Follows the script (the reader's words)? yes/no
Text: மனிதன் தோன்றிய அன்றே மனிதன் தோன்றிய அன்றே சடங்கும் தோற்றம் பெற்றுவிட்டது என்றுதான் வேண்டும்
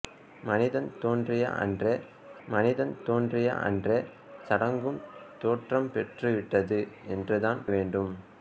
yes